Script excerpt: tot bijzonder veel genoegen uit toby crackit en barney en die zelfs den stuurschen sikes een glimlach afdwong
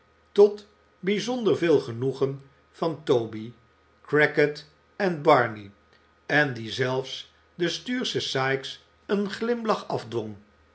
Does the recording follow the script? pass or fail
fail